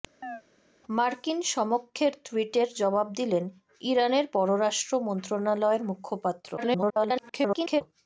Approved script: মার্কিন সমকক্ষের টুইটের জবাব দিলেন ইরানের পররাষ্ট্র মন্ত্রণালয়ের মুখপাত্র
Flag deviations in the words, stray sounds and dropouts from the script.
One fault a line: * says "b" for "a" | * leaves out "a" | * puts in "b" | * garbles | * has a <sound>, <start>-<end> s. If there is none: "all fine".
* has a chirp, 0.2-0.4 s
* garbles